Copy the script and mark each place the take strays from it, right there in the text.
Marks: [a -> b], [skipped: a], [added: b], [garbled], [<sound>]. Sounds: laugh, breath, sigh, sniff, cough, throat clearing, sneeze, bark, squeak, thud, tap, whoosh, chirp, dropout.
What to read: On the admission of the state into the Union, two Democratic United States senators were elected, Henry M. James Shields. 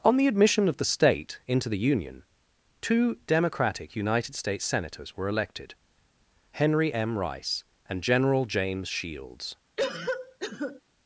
On the admission of the state into the Union, two Democratic United States senators were elected, Henry M. [added: Rice and General] James Shields. [cough]